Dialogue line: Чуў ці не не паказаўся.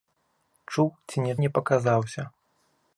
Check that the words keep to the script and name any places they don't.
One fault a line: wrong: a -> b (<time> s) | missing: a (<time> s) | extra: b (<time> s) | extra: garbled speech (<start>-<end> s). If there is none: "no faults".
no faults